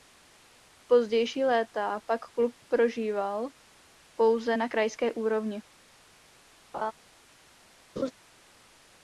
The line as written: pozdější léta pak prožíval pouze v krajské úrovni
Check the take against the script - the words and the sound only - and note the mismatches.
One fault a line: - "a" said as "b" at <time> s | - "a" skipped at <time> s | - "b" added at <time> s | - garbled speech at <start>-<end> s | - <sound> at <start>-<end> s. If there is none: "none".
- "klub" added at 2.4 s
- "v" said as "na" at 4.6 s
- laugh at 6.7-6.9 s
- laugh at 8.0-8.1 s